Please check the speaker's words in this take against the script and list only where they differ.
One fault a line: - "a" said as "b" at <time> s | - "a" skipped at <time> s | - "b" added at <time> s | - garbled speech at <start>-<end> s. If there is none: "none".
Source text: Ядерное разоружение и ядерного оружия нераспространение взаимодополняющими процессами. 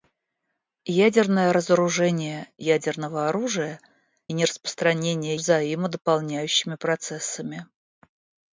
none